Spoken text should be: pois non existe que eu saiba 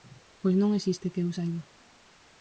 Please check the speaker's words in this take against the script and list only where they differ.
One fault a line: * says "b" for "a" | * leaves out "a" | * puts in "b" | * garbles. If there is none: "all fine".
all fine